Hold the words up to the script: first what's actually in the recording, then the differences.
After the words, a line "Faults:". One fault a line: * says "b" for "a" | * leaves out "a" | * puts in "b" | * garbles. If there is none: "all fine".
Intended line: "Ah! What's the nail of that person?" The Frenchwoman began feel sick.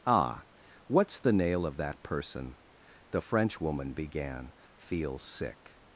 "Ah! What's the nail of that person?" The Frenchwoman began feel sick.
Faults:
all fine